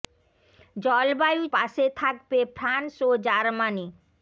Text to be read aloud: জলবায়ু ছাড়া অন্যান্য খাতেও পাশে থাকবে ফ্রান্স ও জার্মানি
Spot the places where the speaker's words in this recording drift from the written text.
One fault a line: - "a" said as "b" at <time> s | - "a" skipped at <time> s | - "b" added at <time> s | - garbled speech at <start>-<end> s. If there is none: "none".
- "ছাড়া অন্যান্য খাতেও" skipped at 1.4 s